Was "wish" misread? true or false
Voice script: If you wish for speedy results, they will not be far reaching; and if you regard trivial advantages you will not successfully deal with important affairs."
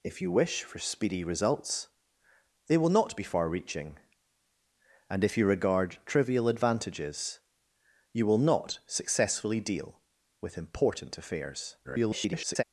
false